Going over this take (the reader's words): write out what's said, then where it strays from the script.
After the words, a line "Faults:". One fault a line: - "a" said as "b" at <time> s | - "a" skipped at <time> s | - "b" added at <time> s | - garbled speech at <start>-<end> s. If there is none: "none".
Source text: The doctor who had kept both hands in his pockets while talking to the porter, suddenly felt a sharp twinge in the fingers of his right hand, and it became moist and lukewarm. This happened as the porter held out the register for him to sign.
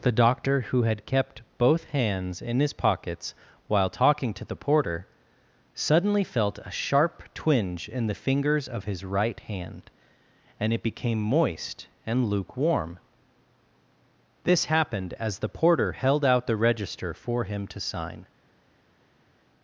The doctor who had kept both hands in his pockets while talking to the porter, suddenly felt a sharp twinge in the fingers of his right hand, and it became moist and lukewarm. This happened as the porter held out the register for him to sign.
Faults:
none